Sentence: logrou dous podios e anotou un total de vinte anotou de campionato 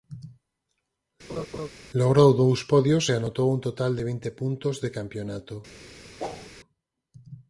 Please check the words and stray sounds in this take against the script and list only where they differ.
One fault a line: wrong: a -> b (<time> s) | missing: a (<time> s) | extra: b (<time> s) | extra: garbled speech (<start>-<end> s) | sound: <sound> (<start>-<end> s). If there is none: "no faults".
sound: laugh (1.3-1.7 s)
wrong: anotou -> puntos (4.4 s)
sound: whoosh (6.2-6.5 s)